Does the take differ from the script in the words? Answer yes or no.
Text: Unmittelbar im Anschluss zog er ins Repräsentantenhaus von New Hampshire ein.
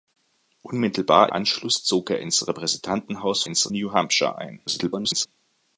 yes